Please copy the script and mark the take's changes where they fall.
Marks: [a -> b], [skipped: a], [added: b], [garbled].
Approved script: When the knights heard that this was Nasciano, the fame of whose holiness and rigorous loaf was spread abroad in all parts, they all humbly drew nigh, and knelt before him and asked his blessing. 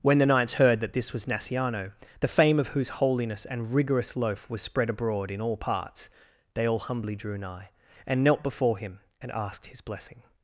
When the knights heard that this was Nasciano, the fame of whose holiness and rigorous loaf was spread abroad in all parts, they all humbly drew nigh, and knelt before him and asked his blessing.